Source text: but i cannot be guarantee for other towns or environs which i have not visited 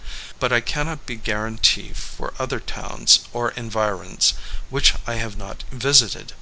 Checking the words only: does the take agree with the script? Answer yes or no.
yes